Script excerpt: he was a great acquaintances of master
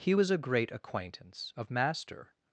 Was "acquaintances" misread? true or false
true